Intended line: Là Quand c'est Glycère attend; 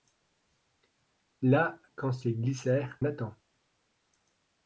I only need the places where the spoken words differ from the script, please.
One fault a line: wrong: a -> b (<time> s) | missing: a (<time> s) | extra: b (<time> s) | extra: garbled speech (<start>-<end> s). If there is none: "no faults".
no faults